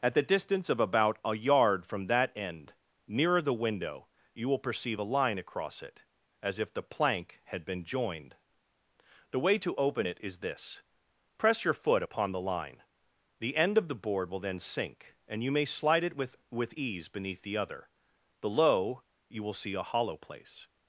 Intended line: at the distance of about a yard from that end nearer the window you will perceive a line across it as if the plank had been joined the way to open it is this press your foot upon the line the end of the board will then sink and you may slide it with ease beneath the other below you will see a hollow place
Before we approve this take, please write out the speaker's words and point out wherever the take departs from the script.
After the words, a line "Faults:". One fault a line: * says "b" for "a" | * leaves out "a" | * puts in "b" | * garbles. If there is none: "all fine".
at the distance of about a yard from that end nearer the window you will perceive a line across it as if the plank had been joined the way to open it is this press your foot upon the line the end of the board will then sink and you may slide it with with ease beneath the other below you will see a hollow place
Faults:
* puts in "with"